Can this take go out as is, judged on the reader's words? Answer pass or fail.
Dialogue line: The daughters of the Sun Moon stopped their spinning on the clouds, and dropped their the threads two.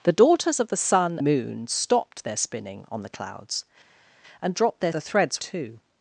pass